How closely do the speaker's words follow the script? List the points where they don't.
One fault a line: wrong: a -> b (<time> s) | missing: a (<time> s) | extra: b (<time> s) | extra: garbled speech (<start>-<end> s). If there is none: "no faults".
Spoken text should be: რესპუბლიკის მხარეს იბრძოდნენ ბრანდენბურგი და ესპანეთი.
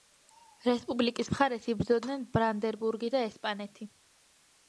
no faults